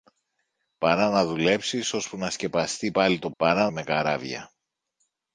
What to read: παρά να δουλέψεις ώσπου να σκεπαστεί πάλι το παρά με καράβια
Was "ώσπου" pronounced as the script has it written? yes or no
yes